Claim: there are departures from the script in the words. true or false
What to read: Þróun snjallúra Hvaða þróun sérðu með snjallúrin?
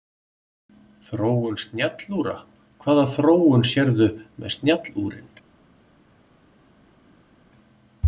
false